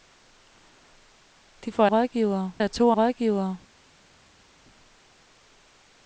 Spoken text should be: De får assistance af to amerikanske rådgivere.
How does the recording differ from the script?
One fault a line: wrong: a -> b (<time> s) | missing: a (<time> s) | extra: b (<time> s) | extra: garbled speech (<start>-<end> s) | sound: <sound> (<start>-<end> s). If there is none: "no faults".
wrong: assistance -> rådgivere (1.8 s)
missing: amerikanske (2.9 s)